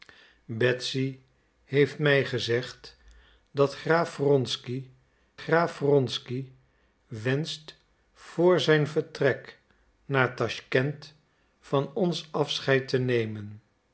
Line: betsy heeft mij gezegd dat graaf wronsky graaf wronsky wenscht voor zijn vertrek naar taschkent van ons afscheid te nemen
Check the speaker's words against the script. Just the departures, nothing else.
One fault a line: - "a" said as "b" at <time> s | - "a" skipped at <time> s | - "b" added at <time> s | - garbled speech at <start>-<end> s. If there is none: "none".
none